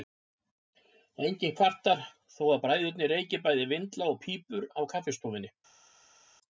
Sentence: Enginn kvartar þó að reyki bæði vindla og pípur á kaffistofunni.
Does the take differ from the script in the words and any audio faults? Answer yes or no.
yes